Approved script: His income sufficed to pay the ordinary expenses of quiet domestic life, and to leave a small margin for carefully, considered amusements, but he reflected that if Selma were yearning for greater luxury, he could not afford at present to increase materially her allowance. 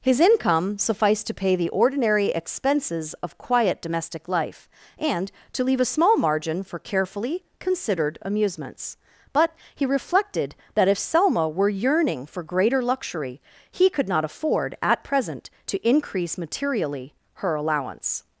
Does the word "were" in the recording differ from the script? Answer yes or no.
no